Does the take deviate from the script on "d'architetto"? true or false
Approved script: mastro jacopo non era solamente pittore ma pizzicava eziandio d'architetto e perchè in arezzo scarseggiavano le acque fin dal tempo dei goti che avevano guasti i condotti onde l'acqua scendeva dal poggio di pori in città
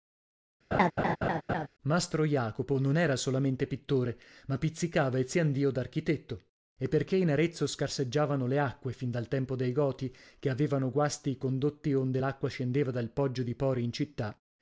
false